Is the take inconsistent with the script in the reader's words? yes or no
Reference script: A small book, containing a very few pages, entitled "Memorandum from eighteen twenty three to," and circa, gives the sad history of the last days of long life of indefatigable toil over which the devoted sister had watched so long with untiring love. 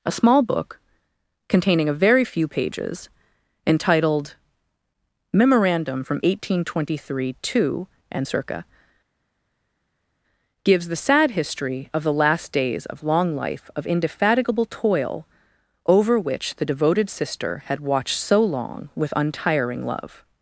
no